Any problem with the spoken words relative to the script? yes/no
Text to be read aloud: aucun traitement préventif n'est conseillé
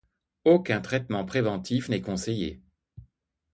no